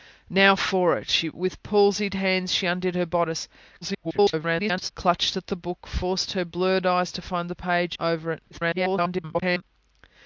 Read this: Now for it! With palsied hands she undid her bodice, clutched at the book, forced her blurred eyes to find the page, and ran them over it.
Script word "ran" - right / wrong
wrong